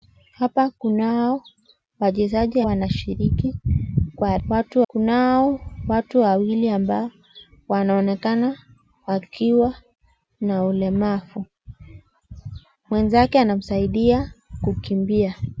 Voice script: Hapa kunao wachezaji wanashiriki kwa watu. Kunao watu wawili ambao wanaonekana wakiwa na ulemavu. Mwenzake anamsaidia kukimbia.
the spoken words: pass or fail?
pass